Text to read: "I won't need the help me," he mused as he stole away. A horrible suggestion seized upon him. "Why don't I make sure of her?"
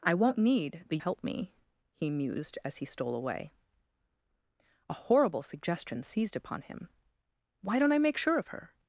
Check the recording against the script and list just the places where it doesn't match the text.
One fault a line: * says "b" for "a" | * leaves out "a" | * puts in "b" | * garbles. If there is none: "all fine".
all fine